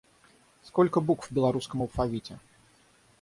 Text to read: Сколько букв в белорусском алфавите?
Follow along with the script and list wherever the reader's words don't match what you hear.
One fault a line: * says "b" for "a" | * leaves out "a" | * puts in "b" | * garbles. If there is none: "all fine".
all fine